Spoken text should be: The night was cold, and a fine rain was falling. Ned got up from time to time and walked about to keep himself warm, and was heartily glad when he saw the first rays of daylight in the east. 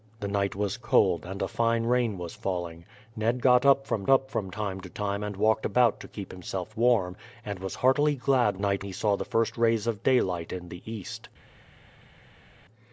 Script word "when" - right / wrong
wrong